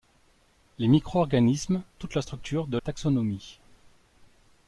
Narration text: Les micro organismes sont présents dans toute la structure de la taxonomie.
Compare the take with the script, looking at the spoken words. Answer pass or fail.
fail